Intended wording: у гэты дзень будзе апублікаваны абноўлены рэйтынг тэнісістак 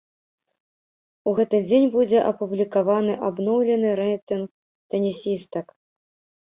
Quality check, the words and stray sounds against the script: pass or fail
pass